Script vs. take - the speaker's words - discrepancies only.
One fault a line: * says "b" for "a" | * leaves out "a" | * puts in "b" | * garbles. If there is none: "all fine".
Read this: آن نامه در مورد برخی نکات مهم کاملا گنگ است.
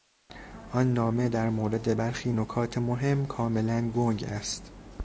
all fine